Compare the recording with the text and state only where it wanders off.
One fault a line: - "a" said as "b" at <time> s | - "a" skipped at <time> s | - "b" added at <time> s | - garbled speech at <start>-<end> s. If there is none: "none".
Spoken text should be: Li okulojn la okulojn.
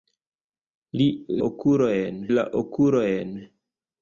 none